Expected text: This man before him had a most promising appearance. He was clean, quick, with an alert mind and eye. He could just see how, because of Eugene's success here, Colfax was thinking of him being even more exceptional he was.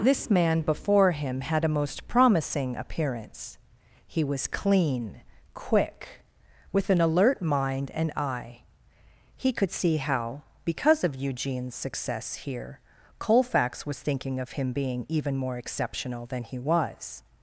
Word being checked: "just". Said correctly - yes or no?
no